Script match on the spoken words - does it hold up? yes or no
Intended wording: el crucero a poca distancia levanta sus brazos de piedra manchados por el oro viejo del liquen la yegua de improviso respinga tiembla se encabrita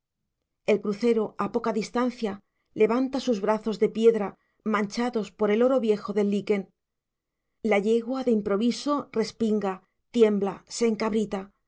yes